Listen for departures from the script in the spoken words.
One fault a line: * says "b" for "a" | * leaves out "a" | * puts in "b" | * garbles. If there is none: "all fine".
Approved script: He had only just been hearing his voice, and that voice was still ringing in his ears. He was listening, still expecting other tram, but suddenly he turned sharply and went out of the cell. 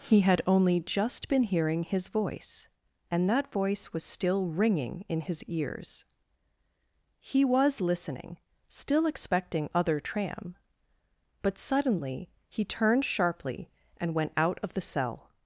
all fine